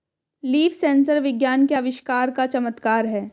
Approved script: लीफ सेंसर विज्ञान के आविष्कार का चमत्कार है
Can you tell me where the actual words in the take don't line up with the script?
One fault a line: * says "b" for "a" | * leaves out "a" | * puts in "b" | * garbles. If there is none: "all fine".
all fine